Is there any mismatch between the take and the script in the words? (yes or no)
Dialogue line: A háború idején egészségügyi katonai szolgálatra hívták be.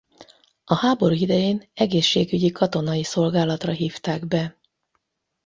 no